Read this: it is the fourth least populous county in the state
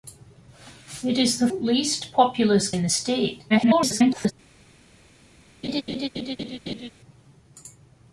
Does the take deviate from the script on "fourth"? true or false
true